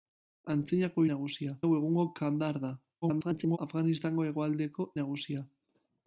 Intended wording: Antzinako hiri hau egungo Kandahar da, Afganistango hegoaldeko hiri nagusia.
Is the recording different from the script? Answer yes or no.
yes